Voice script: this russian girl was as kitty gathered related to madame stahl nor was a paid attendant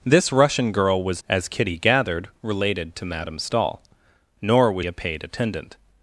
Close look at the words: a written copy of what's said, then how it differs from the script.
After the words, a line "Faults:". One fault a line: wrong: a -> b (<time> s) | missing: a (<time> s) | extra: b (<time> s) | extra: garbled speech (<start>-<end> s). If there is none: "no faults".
this russian girl was as kitty gathered related to madame stahl nor was a paid attendant
Faults:
no faults